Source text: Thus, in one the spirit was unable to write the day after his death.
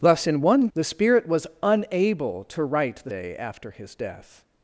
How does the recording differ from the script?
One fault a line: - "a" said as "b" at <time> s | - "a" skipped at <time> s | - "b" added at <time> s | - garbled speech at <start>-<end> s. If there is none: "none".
none